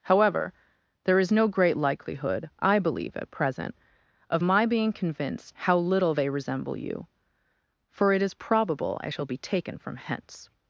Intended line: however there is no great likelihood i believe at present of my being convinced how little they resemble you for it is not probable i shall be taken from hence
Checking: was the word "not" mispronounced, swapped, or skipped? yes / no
yes